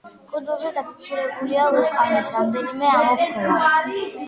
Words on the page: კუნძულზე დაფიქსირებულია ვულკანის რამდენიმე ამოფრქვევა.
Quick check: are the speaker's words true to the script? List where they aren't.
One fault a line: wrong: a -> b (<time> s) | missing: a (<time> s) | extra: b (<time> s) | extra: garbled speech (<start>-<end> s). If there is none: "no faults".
no faults